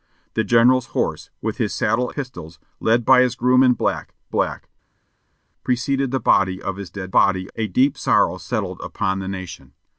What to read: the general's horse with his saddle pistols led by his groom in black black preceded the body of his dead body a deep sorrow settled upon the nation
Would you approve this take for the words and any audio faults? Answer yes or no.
yes